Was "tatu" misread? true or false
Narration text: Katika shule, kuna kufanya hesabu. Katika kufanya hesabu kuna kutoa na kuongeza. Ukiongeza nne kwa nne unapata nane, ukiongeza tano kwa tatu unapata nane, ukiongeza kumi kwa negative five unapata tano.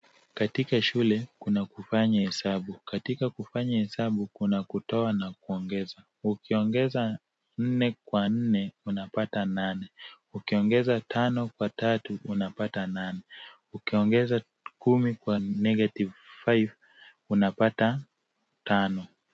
false